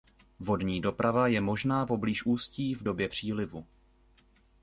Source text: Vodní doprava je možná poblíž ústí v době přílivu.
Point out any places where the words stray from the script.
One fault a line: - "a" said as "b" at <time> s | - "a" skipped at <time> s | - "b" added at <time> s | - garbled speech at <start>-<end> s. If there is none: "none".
none